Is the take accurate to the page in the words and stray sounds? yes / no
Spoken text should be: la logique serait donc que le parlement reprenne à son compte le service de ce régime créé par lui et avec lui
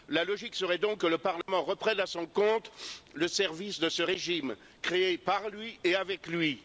no